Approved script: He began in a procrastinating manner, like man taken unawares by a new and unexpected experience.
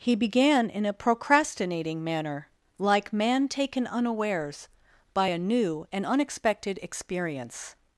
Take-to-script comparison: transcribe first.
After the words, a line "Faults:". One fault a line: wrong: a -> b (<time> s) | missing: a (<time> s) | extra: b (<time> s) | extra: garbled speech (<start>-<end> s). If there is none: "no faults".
He began in a procrastinating manner, like man taken unawares by a new and unexpected experience.
Faults:
no faults